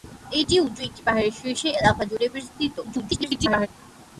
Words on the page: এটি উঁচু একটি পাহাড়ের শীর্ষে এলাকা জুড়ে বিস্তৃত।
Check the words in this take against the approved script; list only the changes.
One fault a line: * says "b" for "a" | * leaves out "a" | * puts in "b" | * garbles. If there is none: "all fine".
* garbles